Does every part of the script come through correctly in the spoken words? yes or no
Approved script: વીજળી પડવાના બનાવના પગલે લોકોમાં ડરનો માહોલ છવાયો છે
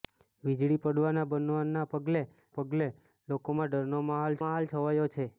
no